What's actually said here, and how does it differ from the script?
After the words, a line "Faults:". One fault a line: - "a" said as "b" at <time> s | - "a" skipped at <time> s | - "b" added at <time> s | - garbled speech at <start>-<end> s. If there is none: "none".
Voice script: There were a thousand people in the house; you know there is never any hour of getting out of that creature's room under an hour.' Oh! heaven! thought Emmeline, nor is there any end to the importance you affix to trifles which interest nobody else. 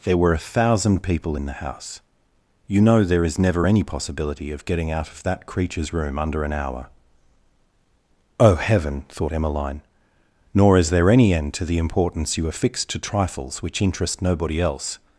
There were a thousand people in the house; you know there is never any possibility of getting out of that creature's room under an hour.' Oh! heaven! thought Emmeline, nor is there any end to the importance you affix to trifles which interest nobody else.
Faults:
- "hour" said as "possibility" at 3.8 s